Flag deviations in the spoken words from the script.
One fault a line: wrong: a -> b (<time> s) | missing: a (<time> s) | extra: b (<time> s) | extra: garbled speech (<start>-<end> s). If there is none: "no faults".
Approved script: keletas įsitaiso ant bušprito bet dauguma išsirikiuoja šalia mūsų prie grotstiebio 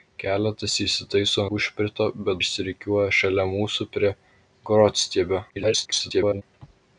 missing: ant (1.4 s)
missing: dauguma (2.4 s)
extra: garbled speech (5.5-6.4 s)